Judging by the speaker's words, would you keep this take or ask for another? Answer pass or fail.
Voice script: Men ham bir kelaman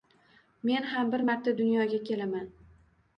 fail